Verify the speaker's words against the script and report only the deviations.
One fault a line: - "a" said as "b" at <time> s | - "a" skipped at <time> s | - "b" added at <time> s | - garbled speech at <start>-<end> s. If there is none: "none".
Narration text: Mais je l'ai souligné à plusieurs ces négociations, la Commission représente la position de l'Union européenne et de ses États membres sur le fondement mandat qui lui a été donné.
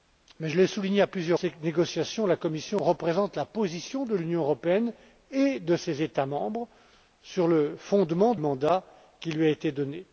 none